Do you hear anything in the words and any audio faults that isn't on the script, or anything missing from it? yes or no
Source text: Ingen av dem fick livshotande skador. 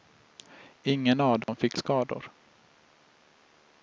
yes